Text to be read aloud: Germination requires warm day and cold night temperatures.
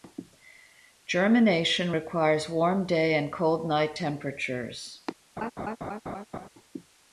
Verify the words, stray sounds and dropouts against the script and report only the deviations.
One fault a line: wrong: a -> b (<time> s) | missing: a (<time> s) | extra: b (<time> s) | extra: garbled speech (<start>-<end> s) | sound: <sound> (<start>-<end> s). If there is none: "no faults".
sound: laugh (5.4-6.5 s)